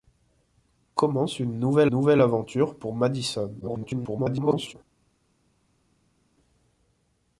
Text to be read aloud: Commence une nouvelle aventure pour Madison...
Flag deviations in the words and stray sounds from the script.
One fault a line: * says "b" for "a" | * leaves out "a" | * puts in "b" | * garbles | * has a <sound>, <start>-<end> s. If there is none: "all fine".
* puts in "nouvelle"
* garbles